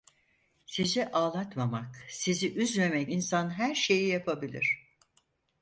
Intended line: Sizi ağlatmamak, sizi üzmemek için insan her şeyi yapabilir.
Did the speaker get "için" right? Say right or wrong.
wrong